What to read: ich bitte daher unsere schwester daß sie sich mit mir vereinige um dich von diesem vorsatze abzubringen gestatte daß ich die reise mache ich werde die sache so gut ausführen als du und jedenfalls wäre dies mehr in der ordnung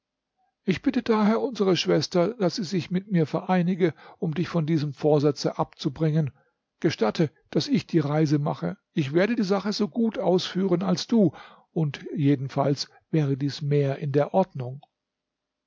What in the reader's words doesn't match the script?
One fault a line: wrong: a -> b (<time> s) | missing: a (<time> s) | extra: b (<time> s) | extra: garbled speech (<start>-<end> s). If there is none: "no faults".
no faults